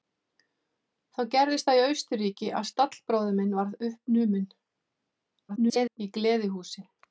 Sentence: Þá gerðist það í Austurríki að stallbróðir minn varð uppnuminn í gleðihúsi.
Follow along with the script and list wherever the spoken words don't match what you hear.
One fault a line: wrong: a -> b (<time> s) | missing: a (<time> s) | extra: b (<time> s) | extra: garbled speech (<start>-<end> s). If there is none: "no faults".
extra: garbled speech (5.5-6.0 s)